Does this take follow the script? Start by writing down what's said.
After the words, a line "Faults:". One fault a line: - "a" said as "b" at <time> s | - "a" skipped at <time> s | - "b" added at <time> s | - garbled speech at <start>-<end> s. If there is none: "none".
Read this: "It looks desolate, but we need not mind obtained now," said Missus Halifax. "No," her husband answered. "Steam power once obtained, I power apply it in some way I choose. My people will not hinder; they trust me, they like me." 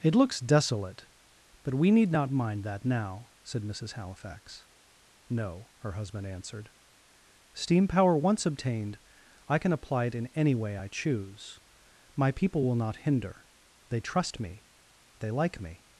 "It looks desolate, but we need not mind that now," said Missus Halifax. "No," her husband answered. "Steam power once obtained, I can apply it in any way I choose. My people will not hinder; they trust me, they like me."
Faults:
- "obtained" said as "that" at 2.6 s
- "power" said as "can" at 9.6 s
- "some" said as "any" at 10.3 s